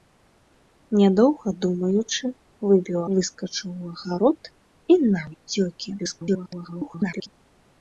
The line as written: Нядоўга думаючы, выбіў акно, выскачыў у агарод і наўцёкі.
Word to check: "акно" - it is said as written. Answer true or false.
false